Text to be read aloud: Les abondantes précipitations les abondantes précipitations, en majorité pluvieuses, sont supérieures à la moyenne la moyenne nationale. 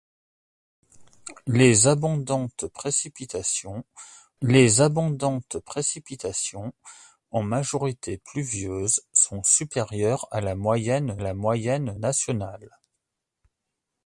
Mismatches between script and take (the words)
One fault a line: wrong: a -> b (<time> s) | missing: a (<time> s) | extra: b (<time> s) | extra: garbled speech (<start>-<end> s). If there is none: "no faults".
no faults